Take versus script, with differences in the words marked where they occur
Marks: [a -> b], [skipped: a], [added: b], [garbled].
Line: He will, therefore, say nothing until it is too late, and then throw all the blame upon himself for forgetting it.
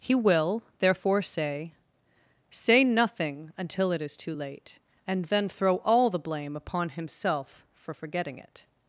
He will, therefore, say [added: say] nothing until it is too late, and then throw all the blame upon himself for forgetting it.